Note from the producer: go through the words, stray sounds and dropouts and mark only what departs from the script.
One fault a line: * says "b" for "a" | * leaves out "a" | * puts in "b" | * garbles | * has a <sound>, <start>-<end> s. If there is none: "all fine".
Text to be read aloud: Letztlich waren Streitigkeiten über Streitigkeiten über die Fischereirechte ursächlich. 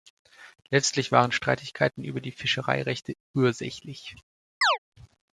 * leaves out "Streitigkeiten über"
* has a chirp, 4.6-4.8 s